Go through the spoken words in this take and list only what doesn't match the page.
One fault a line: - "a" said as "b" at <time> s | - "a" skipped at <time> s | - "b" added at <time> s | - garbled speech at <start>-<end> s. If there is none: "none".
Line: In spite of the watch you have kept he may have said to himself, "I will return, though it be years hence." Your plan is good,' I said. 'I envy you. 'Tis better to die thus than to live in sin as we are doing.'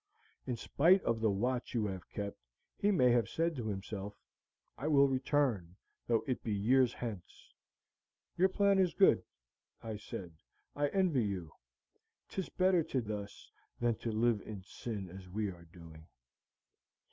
- "die" skipped at 13.0 s